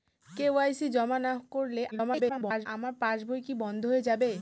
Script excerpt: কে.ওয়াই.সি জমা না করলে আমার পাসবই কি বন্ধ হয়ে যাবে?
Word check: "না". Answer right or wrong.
right